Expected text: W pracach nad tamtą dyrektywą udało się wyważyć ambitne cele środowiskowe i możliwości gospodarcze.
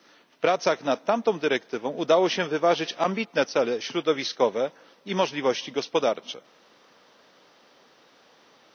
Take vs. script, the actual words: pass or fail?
pass